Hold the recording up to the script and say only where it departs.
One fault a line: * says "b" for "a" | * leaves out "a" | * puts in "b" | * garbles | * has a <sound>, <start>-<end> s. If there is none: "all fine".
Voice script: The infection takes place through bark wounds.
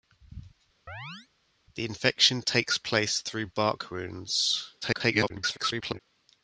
* has a chirp, 0.9-1.3 s
* garbles